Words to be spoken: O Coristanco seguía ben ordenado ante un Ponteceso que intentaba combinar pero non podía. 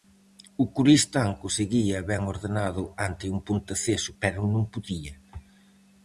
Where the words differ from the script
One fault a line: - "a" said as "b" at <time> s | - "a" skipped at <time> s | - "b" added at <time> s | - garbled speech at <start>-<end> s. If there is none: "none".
- "que intentaba combinar" skipped at 4.1 s